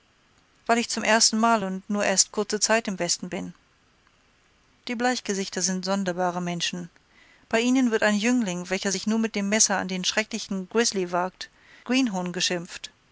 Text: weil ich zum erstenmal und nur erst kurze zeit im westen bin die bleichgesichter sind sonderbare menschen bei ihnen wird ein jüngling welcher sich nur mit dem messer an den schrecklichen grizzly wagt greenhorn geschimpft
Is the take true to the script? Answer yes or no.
yes